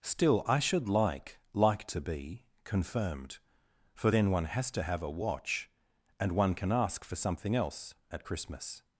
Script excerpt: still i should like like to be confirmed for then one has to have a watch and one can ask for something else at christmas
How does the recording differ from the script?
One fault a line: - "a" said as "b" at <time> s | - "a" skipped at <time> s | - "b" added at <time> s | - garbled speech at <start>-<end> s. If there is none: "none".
none